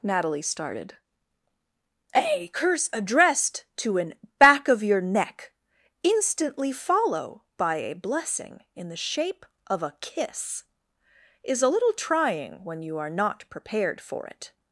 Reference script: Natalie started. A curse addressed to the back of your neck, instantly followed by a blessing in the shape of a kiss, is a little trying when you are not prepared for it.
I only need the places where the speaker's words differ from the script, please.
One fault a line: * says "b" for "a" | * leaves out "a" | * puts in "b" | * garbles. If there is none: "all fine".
* says "an" for "the"
* says "follow" for "followed"